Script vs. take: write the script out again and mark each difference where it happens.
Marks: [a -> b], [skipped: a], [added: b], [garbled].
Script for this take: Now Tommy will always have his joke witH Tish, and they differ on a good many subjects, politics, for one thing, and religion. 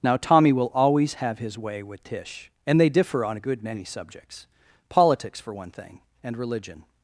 Now Tommy will always have his [joke -> way] witH Tish, and they differ on a good many subjects, politics, for one thing, and religion.